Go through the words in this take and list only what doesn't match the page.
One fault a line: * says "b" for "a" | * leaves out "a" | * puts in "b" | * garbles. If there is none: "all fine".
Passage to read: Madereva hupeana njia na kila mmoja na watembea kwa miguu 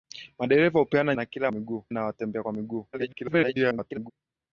* leaves out "njia"
* says "miguu" for "mmoja"
* garbles